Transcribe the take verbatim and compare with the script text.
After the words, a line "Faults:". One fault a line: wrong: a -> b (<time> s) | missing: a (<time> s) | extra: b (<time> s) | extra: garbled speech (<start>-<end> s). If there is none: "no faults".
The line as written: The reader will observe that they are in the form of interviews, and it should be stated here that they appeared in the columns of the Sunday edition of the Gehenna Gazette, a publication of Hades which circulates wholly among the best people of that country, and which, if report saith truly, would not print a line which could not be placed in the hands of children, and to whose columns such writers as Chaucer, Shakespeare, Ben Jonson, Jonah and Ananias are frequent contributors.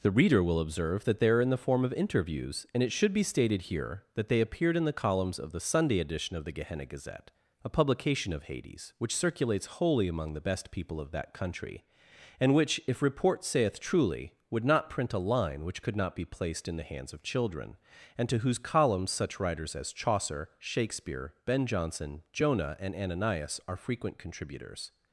The reader will observe that they are in the form of interviews, and it should be stated here that they appeared in the columns of the Sunday edition of the Gehenna Gazette, a publication of Hades which circulates wholly among the best people of that country, and which, if report saith truly, would not print a line which could not be placed in the hands of children, and to whose columns such writers as Chaucer, Shakespeare, Ben Jonson, Jonah and Ananias are frequent contributors.
Faults:
no faults